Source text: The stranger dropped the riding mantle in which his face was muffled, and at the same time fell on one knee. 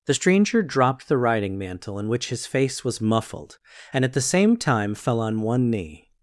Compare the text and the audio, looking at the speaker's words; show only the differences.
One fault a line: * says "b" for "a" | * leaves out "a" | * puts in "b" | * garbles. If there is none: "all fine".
all fine